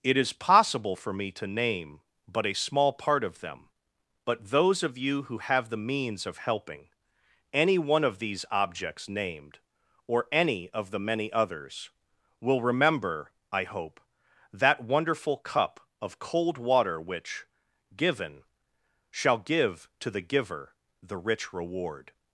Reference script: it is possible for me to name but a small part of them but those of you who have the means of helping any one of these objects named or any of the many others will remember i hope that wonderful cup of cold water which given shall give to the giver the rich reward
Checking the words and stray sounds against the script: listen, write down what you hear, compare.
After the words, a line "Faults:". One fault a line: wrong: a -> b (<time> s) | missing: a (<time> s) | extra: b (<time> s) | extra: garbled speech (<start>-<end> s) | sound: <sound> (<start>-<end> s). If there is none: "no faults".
it is possible for me to name but a small part of them but those of you who have the means of helping any one of these objects named or any of the many others will remember i hope that wonderful cup of cold water which given shall give to the giver the rich reward
Faults:
no faults